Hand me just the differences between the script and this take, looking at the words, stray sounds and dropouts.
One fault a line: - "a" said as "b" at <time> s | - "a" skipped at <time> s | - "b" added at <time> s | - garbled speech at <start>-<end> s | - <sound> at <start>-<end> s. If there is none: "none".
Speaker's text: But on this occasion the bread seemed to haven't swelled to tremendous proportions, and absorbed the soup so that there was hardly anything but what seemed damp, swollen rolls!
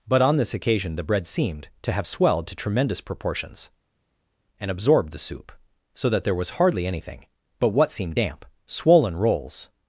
- "haven't" said as "have" at 1.9 s